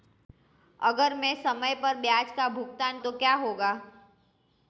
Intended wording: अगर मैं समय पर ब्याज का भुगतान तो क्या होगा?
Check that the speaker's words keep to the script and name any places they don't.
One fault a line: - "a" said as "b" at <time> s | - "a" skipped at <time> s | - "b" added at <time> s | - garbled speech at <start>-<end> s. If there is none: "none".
none